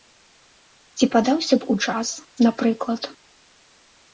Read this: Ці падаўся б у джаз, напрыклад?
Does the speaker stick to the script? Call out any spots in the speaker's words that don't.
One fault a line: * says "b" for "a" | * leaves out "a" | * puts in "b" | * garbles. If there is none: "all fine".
all fine